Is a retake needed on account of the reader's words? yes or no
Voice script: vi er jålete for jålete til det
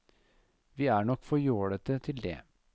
yes